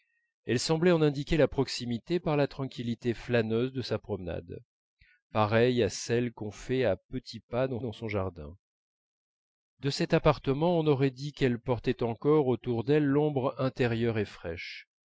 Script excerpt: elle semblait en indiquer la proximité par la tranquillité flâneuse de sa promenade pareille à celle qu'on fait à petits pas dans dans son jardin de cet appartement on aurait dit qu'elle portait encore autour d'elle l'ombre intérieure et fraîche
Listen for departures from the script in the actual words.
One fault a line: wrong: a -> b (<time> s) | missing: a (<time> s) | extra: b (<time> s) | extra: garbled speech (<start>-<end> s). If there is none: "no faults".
no faults